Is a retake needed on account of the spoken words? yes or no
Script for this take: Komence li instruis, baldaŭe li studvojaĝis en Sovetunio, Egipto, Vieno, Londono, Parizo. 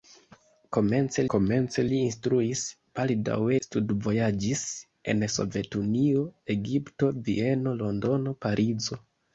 yes